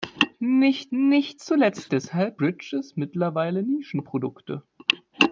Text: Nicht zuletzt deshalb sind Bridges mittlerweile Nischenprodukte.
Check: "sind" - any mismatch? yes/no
yes